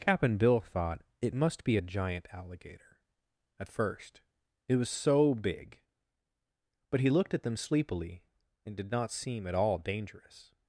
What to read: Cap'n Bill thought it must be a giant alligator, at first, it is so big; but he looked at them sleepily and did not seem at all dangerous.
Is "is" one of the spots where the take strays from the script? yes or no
yes